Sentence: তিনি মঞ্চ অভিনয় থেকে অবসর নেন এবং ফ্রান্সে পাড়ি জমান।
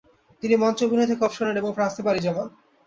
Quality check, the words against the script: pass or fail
pass